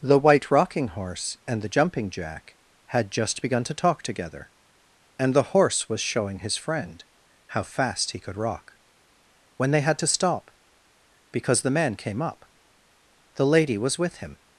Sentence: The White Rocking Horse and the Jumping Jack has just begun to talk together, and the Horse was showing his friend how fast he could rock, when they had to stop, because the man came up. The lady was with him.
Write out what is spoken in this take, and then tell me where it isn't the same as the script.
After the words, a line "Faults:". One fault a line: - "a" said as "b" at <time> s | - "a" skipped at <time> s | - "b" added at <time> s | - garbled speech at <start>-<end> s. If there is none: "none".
The White Rocking Horse and the Jumping Jack had just begun to talk together, and the Horse was showing his friend how fast he could rock, when they had to stop, because the man came up. The lady was with him.
Faults:
- "has" said as "had" at 2.8 s